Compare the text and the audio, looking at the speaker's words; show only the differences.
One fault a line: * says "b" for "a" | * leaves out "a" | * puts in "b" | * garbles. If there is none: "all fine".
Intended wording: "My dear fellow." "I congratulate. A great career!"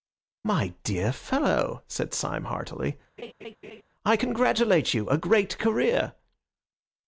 * puts in "said Syme heartily"
* puts in "you"